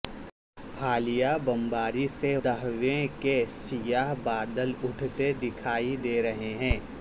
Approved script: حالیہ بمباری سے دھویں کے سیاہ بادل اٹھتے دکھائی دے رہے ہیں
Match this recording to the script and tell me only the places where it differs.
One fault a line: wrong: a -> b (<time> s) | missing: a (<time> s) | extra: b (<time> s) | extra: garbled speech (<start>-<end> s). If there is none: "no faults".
no faults